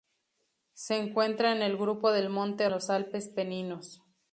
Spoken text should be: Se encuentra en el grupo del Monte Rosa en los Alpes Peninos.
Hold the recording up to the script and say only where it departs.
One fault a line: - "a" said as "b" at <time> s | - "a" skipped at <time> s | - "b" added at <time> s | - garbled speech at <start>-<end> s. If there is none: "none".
- "Rosa en" skipped at 2.7 s